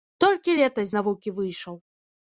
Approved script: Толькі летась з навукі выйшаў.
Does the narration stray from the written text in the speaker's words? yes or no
yes